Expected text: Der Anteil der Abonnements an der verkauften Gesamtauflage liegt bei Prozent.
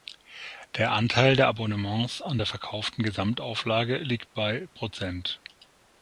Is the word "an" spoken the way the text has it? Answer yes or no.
yes